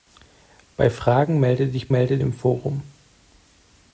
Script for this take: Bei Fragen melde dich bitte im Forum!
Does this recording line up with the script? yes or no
no